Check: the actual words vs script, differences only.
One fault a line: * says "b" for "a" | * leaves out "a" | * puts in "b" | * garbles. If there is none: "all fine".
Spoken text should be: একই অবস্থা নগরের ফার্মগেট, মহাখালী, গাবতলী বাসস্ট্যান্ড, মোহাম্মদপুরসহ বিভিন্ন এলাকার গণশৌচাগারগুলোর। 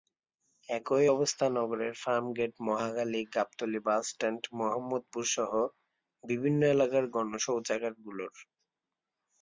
all fine